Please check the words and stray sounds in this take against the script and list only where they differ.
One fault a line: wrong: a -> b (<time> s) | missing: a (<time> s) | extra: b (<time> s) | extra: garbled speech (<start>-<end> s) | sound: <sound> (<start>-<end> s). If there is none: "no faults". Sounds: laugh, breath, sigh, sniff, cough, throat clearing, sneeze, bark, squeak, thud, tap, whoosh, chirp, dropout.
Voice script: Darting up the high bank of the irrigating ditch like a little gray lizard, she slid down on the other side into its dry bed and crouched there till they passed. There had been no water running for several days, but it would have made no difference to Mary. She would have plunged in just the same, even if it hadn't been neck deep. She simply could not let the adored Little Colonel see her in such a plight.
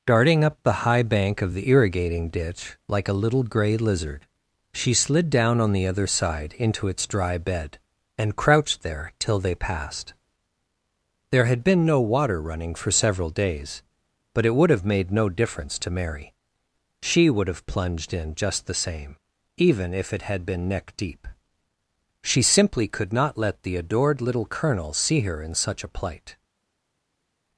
wrong: hadn't -> had (20.2 s)